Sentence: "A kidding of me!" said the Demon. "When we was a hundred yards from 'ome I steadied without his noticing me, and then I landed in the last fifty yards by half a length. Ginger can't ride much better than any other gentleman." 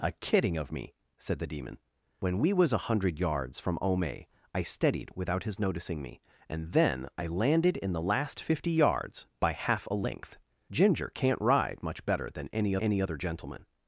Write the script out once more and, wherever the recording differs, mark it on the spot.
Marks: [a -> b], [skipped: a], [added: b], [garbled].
"A kidding of me!" said the Demon. "When we was a hundred yards from 'ome I steadied without his noticing me, and then I landed in the last fifty yards by half a length. Ginger can't ride much better than any [added: any] other gentleman."